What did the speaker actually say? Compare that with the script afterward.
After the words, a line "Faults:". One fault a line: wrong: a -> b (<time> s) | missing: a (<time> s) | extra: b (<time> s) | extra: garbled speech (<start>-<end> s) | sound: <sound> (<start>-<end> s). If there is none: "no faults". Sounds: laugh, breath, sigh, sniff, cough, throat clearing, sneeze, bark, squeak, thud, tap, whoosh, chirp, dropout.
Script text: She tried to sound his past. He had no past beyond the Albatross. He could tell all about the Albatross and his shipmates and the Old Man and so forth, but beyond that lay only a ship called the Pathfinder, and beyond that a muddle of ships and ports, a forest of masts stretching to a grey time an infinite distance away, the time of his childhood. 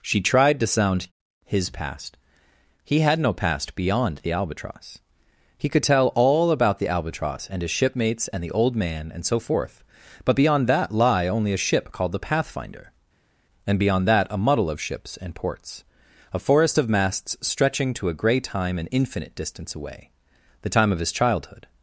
She tried to sound his past. He had no past beyond the Albatross. He could tell all about the Albatross and his shipmates and the Old Man and so forth, but beyond that lie only a ship called the Pathfinder, and beyond that a muddle of ships and ports, a forest of masts stretching to a grey time an infinite distance away, the time of his childhood.
Faults:
wrong: lay -> lie (10.9 s)